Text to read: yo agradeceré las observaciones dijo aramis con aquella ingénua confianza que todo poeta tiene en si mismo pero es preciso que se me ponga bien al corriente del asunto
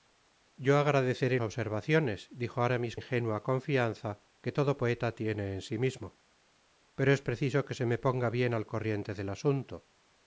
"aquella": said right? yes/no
no